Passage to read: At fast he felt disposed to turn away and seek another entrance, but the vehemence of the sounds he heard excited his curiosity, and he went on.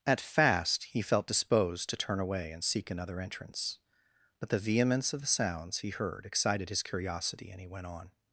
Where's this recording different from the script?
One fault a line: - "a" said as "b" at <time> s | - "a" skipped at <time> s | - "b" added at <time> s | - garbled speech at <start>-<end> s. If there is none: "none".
none